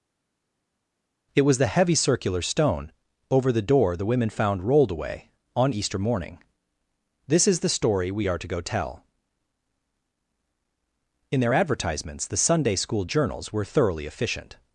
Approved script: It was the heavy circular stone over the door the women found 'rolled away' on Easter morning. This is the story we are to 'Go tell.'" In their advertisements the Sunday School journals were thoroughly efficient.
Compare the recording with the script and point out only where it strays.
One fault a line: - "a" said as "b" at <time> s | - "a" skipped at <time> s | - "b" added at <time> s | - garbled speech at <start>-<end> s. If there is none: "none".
none